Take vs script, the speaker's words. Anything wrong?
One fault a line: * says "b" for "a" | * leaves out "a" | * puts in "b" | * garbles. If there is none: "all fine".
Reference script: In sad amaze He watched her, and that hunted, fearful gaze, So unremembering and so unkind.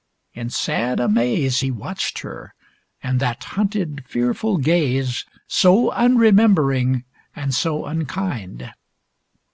all fine